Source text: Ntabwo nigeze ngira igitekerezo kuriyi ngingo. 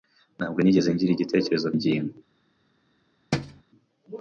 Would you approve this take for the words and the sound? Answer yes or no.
no